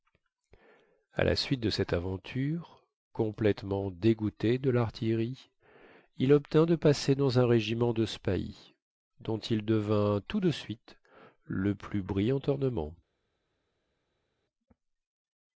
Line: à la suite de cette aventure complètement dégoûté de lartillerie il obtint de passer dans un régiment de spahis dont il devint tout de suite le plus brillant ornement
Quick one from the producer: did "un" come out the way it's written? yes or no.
yes